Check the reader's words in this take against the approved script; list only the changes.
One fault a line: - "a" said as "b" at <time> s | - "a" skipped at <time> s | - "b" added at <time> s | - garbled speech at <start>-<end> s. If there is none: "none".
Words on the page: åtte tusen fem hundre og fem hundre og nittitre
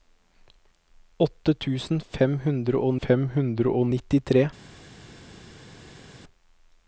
none